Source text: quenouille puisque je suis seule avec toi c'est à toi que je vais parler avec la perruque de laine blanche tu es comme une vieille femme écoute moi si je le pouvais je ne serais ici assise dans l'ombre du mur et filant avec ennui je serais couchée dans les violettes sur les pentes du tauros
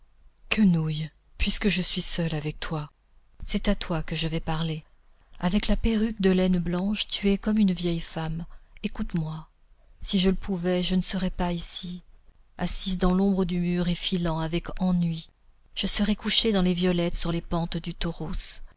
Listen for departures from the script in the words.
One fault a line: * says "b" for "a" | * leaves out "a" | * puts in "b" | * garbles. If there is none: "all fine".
* puts in "pas"